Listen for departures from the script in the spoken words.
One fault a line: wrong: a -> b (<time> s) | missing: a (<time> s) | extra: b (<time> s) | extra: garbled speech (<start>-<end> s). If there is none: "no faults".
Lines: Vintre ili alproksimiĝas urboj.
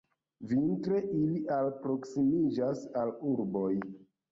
extra: al (3.0 s)